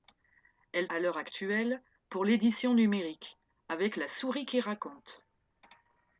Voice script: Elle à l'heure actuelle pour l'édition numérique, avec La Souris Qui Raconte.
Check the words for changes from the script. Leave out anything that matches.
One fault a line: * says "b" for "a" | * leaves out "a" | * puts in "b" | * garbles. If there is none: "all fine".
all fine